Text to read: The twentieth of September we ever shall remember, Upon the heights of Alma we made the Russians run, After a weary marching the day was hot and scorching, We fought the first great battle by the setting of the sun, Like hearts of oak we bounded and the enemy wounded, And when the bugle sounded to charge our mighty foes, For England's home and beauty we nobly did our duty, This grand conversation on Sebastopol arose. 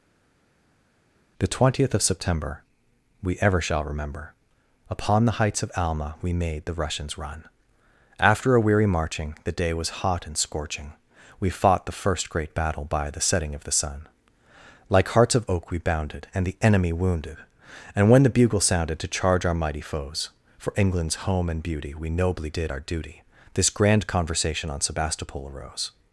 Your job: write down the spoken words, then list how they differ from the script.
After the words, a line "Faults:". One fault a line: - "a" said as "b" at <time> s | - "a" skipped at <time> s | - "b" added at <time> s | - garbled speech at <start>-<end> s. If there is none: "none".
The twentieth of September we ever shall remember, Upon the heights of Alma we made the Russians run, After a weary marching the day was hot and scorching, We fought the first great battle by the setting of the sun, Like hearts of oak we bounded and the enemy wounded, And when the bugle sounded to charge our mighty foes, For England's home and beauty we nobly did our duty, This grand conversation on Sebastopol arose.
Faults:
none